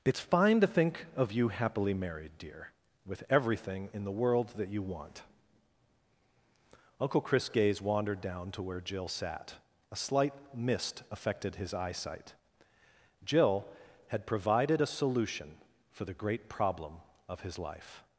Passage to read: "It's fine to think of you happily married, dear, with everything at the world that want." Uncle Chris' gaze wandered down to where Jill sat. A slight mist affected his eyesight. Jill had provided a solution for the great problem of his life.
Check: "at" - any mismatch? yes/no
yes